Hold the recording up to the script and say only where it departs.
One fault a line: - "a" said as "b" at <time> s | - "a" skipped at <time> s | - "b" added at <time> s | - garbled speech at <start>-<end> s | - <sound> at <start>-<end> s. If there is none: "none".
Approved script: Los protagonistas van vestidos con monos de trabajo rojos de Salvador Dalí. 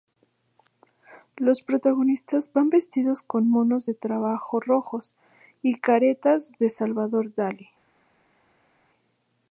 - "y caretas" added at 5.6 s